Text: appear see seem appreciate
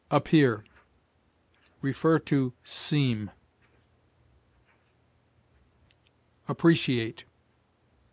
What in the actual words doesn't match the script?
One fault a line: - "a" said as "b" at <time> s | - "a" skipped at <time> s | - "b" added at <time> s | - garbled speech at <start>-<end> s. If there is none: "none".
none